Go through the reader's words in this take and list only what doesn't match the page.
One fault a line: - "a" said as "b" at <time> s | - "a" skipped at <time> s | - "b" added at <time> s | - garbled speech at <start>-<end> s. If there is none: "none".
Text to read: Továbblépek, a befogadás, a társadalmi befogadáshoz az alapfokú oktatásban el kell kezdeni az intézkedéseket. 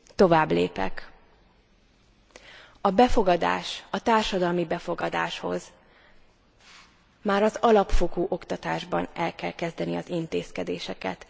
- "már" added at 7.2 s